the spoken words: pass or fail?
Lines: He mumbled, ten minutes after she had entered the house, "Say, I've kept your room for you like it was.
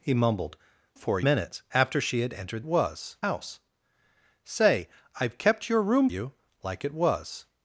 fail